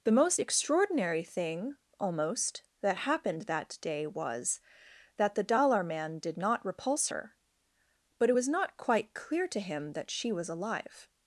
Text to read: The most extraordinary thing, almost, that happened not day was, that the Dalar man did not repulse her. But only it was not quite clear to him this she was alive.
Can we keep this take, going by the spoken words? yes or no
no